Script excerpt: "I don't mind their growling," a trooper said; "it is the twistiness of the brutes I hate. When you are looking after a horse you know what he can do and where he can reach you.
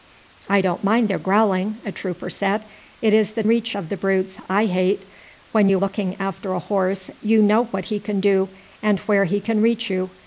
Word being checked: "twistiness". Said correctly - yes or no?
no